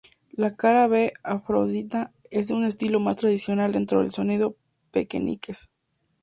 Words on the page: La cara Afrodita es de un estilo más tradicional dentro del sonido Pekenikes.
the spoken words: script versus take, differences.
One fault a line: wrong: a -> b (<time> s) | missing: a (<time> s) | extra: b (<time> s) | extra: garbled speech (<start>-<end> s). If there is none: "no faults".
extra: B (0.9 s)